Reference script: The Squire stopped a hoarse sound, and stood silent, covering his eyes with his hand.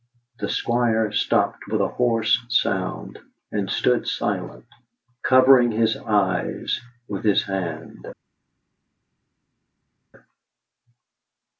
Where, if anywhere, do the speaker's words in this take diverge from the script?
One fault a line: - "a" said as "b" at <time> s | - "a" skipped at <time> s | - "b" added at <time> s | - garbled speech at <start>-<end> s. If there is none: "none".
- "with" added at 1.7 s